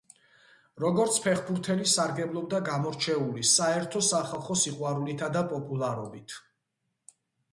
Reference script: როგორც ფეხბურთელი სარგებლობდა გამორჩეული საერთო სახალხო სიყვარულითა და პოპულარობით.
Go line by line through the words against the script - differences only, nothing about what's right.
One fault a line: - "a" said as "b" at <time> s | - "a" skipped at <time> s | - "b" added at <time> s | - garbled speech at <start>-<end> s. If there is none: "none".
none